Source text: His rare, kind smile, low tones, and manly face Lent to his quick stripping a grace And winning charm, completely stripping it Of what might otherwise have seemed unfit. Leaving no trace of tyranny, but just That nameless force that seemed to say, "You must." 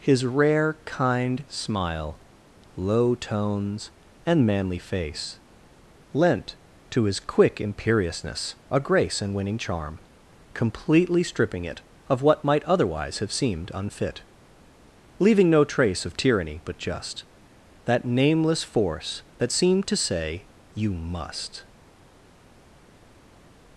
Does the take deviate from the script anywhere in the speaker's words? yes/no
yes